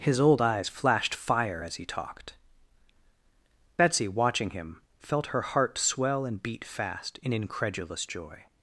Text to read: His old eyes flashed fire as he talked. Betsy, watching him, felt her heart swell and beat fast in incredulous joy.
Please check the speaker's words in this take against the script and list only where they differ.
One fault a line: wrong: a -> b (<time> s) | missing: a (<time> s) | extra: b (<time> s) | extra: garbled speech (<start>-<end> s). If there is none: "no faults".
no faults